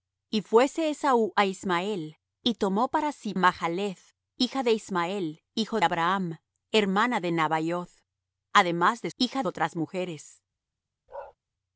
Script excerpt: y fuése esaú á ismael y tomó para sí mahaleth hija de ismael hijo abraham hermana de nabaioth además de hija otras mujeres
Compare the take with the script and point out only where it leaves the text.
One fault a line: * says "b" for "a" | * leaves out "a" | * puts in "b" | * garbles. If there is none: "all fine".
all fine